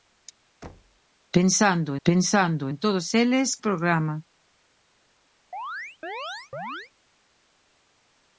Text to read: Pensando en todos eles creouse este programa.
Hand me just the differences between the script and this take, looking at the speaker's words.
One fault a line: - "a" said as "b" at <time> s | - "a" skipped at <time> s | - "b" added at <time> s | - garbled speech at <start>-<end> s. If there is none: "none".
- "pensando" added at 2.1 s
- "creouse este" skipped at 3.6 s